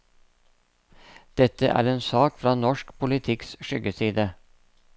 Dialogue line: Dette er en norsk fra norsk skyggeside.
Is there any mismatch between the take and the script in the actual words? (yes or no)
yes